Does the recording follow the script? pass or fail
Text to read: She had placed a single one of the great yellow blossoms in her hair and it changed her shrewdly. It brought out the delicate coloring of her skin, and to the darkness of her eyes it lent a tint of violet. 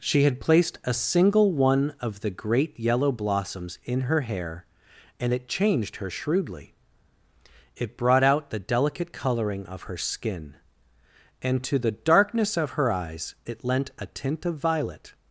pass